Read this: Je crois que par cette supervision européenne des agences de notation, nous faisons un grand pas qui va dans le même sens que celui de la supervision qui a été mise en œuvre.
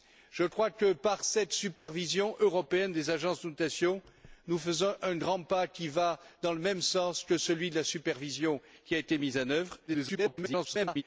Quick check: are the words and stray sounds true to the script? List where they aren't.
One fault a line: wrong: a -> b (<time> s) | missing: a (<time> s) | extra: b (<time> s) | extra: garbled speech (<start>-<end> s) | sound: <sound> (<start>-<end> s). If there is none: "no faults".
sound: dropout (1.8-1.9 s)
extra: garbled speech (9.9-11.0 s)